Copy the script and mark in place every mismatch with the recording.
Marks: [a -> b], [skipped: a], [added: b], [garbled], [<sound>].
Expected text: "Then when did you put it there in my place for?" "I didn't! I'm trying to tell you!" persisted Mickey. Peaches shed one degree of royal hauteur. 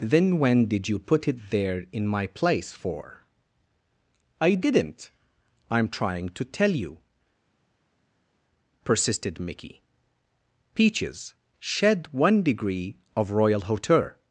"Then when did you put it there in my place for?" "I didn't! I'm trying to tell you!" persisted Mickey. Peaches shed one degree of royal hauteur.